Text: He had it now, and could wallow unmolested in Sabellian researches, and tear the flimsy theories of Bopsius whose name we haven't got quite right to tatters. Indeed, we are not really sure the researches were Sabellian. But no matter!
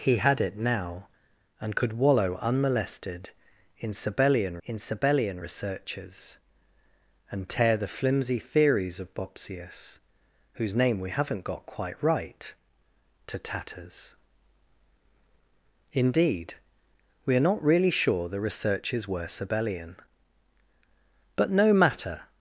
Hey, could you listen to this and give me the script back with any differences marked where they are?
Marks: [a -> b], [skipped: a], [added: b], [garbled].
He had it now, and could wallow unmolested in Sabellian [added: in Sabellian] researches, and tear the flimsy theories of Bopsius whose name we haven't got quite right to tatters. Indeed, we are not really sure the researches were Sabellian. But no matter!